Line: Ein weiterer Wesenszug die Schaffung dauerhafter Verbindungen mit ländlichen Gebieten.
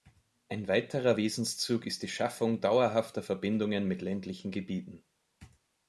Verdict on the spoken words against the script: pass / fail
fail